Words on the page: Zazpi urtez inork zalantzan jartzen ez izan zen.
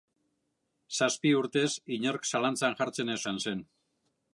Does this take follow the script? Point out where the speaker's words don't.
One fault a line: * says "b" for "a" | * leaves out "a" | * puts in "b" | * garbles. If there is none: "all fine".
all fine